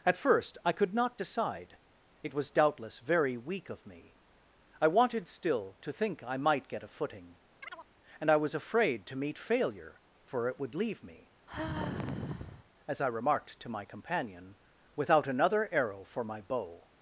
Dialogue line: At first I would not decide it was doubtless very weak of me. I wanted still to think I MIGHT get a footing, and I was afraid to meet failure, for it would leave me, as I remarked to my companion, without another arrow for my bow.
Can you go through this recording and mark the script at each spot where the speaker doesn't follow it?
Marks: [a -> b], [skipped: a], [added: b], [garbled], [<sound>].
At first I [would -> could] not decide it was doubtless very weak of me. I wanted still to think I MIGHT get a footing, [chirp] and I was afraid to meet failure, for it would leave me, [sigh] as I remarked to my companion, without another arrow for my bow.